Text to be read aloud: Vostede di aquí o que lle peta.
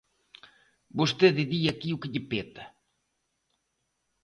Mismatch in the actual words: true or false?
false